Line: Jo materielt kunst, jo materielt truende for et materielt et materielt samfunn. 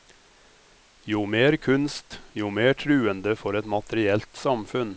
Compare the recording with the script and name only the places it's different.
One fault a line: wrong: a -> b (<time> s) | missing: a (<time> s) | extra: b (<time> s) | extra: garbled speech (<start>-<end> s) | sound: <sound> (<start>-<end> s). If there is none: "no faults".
wrong: materielt -> mer (1.2 s)
wrong: materielt -> mer (2.5 s)
missing: et materielt (4.3 s)